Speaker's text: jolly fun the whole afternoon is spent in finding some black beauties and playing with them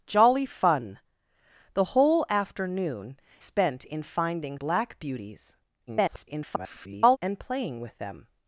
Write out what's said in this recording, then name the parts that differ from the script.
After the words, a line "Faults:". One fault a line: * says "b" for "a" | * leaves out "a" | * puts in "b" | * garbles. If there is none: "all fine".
jolly fun the whole afternoon spent in finding black beauties [garbled] and playing with them
Faults:
* leaves out "is"
* leaves out "some"
* garbles